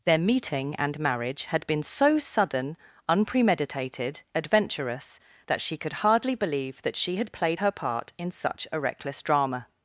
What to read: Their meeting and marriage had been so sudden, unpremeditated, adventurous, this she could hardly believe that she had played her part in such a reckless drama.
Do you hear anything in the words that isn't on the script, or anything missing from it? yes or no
yes